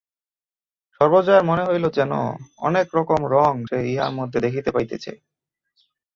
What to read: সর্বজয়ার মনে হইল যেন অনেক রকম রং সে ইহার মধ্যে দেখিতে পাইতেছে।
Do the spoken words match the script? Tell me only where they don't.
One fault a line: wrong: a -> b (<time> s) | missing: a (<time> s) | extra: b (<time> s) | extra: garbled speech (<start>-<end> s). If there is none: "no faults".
no faults